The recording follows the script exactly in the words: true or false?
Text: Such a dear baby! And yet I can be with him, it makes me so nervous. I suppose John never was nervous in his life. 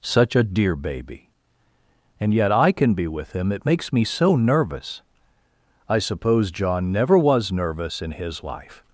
true